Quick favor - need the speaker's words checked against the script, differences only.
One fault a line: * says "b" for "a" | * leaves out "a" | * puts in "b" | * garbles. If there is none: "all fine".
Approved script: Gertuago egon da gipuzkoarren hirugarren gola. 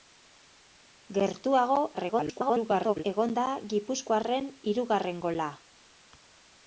* garbles